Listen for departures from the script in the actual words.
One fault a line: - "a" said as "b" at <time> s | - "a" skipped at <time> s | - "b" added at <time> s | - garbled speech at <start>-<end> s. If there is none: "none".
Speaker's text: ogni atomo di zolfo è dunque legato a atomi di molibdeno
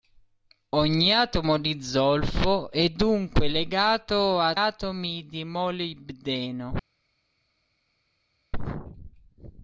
none